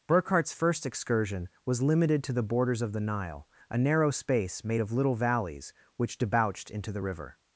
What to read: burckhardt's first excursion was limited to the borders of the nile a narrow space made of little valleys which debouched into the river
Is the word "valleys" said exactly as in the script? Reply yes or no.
yes